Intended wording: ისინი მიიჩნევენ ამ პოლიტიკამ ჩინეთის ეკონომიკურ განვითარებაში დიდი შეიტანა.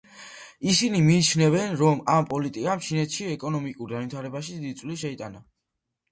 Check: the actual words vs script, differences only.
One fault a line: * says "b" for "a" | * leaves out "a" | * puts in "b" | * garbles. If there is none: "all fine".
* puts in "რომ"
* puts in "წვლილი"